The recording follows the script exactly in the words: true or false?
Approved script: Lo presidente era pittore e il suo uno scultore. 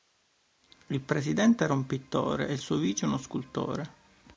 false